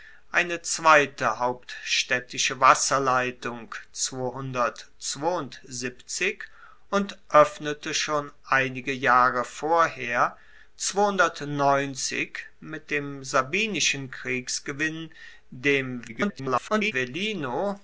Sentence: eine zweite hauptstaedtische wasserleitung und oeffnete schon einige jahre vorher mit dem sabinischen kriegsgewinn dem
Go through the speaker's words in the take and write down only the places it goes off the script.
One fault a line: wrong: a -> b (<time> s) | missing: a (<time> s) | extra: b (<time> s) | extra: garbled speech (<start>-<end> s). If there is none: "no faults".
extra: garbled speech (16.1-16.9 s)